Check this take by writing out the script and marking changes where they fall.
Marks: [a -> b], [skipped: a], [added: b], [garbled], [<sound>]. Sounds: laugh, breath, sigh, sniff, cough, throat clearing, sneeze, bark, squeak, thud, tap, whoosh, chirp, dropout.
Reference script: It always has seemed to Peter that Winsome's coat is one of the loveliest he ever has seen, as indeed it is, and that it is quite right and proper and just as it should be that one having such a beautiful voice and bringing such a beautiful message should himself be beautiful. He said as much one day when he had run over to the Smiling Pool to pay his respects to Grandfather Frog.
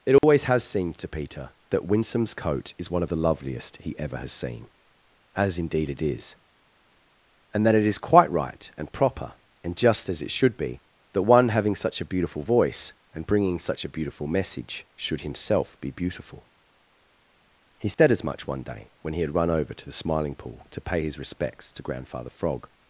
It always [dropout] has seemed to Peter that Winsome's coat is one of the loveliest he ever has seen, as indeed it is, and that it is quite right and proper and just as it should be that one having such a beautiful voice and bringing such a beautiful message should himself be beautiful. He said [dropout] as much one day when he had run over to the Smiling Pool to pay his respects to Grandfather Frog.